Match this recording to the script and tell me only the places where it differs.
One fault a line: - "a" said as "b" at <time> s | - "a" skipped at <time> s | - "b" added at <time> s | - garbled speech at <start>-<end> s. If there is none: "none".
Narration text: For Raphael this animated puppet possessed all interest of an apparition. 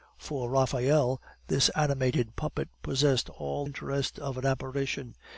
none